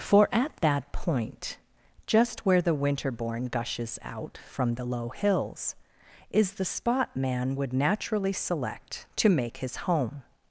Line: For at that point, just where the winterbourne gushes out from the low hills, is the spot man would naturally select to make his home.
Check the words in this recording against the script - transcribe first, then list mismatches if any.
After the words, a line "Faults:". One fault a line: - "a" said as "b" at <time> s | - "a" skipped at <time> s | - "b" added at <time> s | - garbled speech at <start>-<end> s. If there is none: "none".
For at that point, just where the winterbourne gushes out from the low hills, is the spot man would naturally select to make his home.
Faults:
none